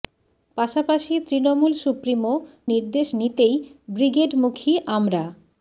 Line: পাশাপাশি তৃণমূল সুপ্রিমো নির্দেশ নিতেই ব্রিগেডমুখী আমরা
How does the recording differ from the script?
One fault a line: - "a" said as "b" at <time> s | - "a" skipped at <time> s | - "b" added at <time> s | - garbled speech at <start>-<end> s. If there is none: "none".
none